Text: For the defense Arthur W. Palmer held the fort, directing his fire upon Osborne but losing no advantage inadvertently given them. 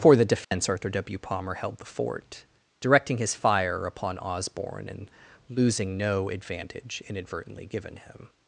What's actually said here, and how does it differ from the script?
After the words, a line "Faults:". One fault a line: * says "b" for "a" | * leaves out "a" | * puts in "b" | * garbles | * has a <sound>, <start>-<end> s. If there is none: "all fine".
For the defense Arthur W. Palmer held the fort, directing his fire upon Osborne and losing no advantage inadvertently given him.
Faults:
* has a dropout, 0.4-0.5 s
* says "and" for "but"
* says "him" for "them"